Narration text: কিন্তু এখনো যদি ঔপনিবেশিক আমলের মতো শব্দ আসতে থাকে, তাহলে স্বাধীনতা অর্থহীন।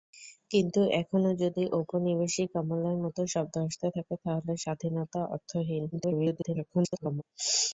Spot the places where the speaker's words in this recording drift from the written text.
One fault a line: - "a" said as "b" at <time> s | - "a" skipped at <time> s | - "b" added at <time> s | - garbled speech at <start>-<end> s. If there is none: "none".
- garbled speech at 5.9-7.2 s